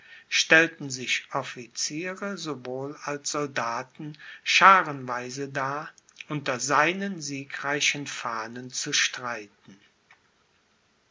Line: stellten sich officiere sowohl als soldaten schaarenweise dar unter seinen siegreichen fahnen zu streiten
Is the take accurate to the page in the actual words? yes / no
yes